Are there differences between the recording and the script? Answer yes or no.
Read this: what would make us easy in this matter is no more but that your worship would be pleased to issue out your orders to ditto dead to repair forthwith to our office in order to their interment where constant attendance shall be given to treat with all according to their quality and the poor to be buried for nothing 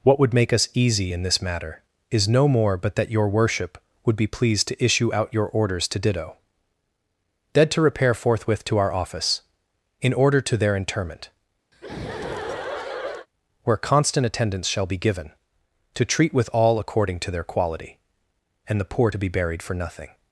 no